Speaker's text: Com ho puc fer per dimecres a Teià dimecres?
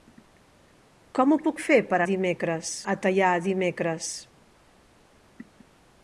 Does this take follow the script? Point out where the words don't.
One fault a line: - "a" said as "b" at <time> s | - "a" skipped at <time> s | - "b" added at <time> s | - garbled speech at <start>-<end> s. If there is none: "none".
none